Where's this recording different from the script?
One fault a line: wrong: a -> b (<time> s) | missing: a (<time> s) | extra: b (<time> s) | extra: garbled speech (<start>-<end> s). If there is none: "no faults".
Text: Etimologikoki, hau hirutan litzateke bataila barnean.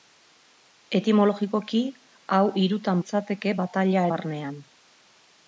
no faults